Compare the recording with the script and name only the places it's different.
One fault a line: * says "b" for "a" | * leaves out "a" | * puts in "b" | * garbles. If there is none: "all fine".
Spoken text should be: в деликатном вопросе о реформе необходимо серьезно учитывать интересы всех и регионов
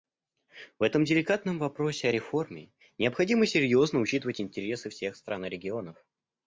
* puts in "этом"
* puts in "стран"